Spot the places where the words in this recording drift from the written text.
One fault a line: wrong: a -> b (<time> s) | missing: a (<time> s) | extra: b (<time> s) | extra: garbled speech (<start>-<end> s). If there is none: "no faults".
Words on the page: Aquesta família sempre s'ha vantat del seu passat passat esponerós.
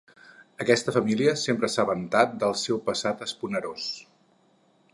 missing: passat (3.3 s)